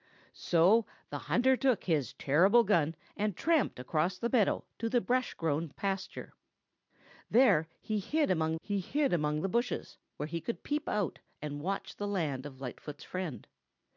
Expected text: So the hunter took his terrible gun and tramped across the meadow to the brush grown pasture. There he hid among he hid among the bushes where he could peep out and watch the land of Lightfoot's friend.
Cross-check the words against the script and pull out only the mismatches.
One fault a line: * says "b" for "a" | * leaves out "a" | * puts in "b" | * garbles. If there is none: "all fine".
all fine